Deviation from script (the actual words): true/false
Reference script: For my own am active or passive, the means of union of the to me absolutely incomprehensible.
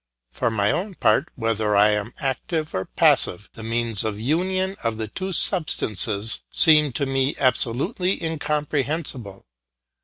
true